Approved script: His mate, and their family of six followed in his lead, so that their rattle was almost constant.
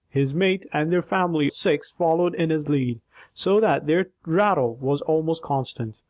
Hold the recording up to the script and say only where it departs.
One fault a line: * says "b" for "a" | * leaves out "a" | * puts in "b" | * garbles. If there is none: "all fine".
* leaves out "of"